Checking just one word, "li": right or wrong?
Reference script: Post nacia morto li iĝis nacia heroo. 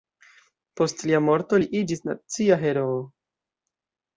right